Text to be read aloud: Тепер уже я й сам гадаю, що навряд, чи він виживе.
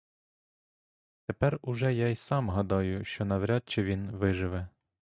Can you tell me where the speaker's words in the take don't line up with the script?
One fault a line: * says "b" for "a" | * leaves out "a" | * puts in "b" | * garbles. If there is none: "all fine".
all fine